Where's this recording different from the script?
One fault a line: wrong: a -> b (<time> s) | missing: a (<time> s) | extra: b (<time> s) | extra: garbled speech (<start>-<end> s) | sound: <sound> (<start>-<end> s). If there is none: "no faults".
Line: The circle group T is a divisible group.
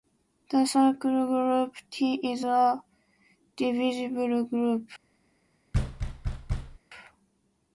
sound: thud (5.7-6.8 s)